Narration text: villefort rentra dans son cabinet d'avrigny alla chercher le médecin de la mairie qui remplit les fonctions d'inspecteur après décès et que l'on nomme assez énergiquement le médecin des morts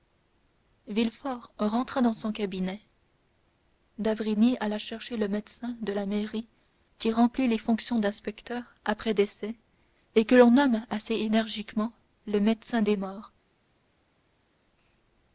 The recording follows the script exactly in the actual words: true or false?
true